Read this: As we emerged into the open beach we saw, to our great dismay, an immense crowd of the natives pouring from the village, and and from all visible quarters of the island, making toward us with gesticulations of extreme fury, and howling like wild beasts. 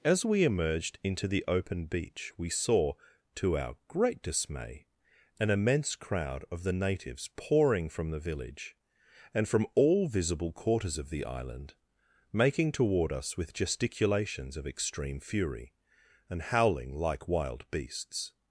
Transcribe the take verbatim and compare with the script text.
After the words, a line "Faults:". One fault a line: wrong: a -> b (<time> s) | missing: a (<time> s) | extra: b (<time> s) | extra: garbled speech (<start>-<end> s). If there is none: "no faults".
As we emerged into the open beach we saw, to our great dismay, an immense crowd of the natives pouring from the village, and from all visible quarters of the island, making toward us with gesticulations of extreme fury, and howling like wild beasts.
Faults:
missing: and (9.5 s)